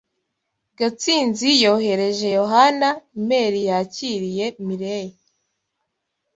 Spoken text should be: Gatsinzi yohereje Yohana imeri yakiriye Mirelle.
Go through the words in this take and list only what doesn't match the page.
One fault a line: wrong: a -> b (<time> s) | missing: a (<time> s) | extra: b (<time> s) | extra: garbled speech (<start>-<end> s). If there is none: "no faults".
no faults